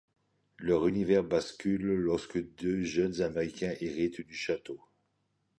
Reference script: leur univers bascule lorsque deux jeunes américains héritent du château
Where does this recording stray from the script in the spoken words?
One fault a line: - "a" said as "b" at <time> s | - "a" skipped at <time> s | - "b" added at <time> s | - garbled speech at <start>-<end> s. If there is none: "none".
none